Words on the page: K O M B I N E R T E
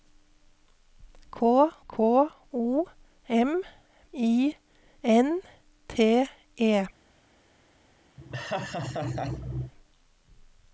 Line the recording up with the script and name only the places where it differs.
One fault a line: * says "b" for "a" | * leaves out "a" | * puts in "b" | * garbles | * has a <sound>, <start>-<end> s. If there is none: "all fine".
* puts in "k"
* leaves out "B"
* leaves out "E R"
* has a laugh, 8.2-9.7 s